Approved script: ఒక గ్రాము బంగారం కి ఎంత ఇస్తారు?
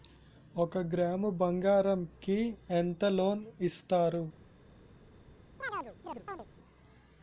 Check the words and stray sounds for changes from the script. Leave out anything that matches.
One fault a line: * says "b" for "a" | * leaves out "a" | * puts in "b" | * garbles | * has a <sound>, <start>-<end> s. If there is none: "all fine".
* puts in "లోన్"
* has a chirp, 5.6-6.5 s